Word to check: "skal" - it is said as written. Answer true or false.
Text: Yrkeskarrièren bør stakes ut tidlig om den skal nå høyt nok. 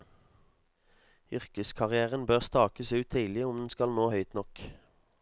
true